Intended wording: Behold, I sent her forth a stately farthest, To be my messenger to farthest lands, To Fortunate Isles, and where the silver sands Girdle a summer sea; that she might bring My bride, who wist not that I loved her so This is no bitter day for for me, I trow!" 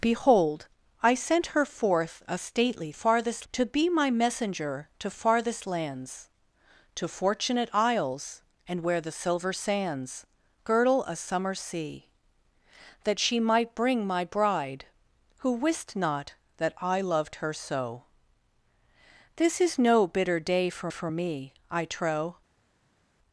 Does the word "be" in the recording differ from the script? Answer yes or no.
no